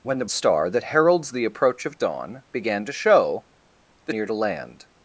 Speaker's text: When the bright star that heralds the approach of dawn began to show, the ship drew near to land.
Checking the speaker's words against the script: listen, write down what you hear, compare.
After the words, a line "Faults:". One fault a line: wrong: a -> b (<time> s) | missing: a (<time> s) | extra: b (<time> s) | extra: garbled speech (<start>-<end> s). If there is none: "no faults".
When the star that heralds the approach of dawn began to show, the near to land.
Faults:
missing: bright (0.2 s)
missing: ship drew (4.1 s)